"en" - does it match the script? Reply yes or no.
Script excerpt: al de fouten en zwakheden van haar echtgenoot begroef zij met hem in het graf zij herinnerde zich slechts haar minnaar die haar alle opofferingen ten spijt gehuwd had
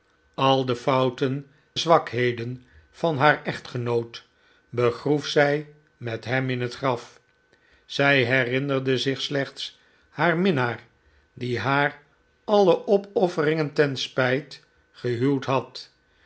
no